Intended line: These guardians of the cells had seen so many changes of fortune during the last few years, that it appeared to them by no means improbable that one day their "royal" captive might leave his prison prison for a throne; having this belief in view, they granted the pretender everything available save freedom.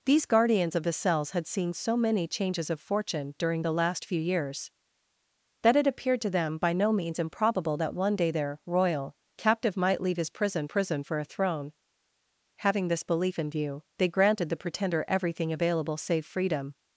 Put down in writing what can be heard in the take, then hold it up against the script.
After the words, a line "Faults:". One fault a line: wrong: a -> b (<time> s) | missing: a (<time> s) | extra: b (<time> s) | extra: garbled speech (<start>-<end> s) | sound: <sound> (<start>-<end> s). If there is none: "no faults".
These guardians of the cells had seen so many changes of fortune during the last few years, that it appeared to them by no means improbable that one day their "royal" captive might leave his prison prison for a throne; having this belief in view, they granted the pretender everything available save freedom.
Faults:
no faults